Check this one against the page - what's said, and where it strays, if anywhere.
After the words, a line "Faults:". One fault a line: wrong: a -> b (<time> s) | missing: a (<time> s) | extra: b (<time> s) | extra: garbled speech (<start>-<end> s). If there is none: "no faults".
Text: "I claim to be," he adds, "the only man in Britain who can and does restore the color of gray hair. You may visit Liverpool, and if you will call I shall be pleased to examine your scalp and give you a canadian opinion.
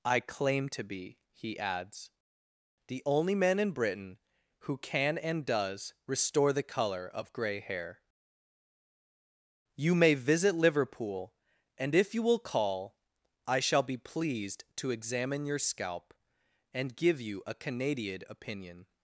"I claim to be," he adds, "the only man in Britain who can and does restore the color of gray hair. You may visit Liverpool, and if you will call I shall be pleased to examine your scalp and give you a canadian opinion.
Faults:
no faults